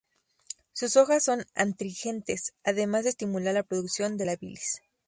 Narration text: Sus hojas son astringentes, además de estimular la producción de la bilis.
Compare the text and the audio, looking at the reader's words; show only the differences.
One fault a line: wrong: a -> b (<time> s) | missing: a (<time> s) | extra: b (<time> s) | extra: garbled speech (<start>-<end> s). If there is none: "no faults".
no faults